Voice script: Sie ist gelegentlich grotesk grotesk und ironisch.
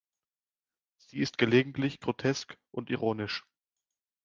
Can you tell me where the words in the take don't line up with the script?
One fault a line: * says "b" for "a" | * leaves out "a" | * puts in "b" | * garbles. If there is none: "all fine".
* leaves out "grotesk"